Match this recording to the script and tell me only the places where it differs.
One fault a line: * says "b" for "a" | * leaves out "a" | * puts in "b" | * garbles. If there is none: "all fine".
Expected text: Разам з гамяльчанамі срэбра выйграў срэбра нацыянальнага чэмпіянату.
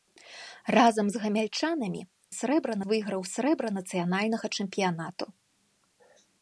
all fine